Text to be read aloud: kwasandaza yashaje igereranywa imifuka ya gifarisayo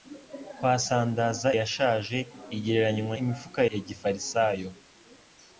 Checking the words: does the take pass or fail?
pass